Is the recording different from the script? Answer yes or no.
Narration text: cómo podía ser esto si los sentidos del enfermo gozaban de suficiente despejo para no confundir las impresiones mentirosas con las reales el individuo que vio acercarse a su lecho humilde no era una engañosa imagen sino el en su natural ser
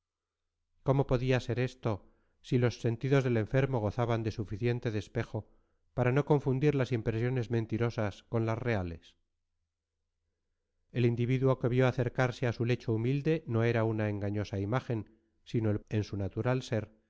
no